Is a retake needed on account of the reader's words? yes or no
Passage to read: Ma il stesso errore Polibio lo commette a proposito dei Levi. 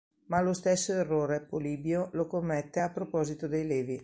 yes